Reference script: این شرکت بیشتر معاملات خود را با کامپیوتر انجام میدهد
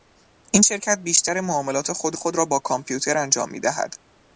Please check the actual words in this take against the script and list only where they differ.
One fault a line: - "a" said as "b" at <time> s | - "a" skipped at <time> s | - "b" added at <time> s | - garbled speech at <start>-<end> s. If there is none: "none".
- "خود" added at 2.1 s